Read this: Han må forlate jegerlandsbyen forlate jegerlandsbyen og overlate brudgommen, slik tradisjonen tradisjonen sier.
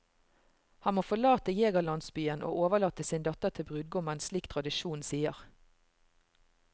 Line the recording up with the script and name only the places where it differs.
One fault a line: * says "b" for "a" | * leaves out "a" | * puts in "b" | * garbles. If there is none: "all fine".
* says "og overlate sin datter til" for "forlate jegerlandsbyen og overlate"
* leaves out "tradisjonen"